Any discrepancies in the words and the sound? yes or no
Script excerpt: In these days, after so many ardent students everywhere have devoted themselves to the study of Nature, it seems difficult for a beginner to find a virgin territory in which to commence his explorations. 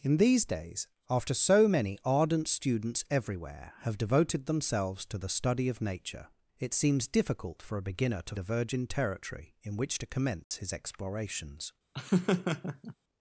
yes